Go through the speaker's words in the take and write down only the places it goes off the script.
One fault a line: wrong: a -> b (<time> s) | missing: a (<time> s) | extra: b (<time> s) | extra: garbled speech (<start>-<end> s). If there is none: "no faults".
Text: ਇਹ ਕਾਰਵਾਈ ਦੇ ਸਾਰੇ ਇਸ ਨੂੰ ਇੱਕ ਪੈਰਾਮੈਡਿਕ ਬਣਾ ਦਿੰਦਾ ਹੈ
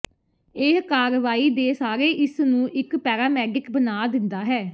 no faults